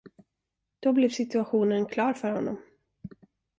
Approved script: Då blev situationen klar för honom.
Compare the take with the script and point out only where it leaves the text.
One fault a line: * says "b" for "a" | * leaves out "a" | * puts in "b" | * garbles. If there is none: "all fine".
all fine